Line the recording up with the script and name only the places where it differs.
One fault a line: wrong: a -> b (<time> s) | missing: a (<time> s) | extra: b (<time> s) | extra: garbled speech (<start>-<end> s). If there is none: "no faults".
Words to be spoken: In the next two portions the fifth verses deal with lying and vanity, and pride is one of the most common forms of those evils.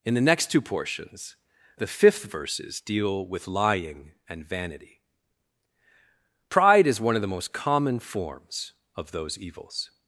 missing: and (5.0 s)